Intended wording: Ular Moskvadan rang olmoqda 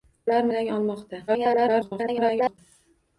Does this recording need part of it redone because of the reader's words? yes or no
yes